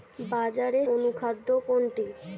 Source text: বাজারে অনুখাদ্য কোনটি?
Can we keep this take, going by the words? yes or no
yes